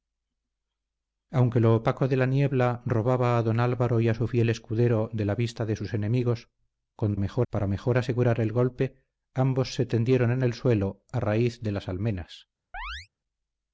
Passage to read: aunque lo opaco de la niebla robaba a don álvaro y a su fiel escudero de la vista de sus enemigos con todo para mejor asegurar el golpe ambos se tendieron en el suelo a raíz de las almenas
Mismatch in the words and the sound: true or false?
true